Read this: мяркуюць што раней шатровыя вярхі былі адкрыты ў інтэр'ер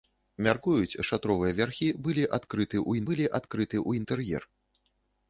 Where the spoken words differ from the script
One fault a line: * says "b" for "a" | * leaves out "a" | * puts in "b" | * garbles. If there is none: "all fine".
* says "шатровыя вярхі былі адкрыты ў" for "што раней шатровыя вярхі"